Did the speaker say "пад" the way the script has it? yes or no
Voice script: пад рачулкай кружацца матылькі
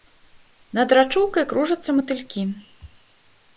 no